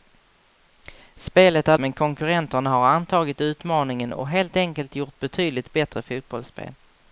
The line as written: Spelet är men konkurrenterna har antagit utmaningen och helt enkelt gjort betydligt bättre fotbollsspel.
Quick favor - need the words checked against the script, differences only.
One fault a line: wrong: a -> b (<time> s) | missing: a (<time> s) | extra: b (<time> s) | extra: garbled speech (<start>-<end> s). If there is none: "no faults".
no faults